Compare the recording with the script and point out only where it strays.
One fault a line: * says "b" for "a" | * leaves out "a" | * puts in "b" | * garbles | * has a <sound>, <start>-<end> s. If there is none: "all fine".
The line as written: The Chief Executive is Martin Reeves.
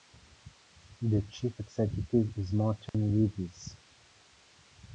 * has a dropout, 2.9-2.9 s